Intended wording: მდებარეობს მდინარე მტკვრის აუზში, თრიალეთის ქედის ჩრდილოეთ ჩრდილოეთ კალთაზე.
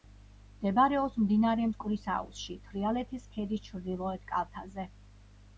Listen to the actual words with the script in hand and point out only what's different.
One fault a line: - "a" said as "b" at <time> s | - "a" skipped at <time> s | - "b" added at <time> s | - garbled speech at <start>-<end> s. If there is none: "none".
- "ჩრდილოეთ" skipped at 4.3 s